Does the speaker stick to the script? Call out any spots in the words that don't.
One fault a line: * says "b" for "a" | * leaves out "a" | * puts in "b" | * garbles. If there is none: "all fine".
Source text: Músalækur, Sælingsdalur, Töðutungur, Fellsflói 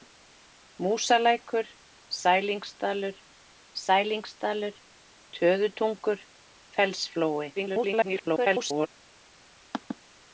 * puts in "Sælingsdalur"
* garbles